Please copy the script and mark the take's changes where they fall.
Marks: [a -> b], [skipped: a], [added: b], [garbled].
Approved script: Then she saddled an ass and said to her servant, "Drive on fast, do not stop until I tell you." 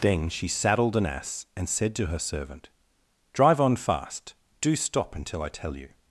Then she saddled an ass and said to her servant, "Drive on fast, do [skipped: not] stop until I tell you."